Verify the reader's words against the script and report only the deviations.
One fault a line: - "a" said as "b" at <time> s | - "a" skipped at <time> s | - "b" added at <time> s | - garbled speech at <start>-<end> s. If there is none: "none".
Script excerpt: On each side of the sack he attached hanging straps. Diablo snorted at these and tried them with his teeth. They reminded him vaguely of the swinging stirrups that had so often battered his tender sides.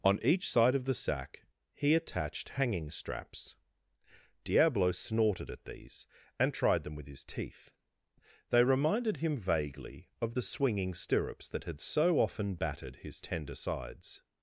none